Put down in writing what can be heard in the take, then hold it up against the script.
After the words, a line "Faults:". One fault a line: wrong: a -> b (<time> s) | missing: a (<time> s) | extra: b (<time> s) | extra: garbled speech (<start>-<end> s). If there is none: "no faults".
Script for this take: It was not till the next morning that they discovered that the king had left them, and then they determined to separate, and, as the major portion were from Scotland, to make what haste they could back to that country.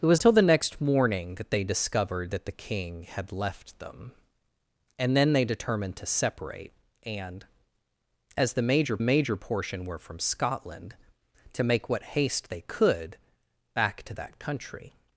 It was till the next morning that they discovered that the king had left them, and then they determined to separate, and, as the major major portion were from Scotland, to make what haste they could back to that country.
Faults:
missing: not (0.2 s)
extra: major (9.0 s)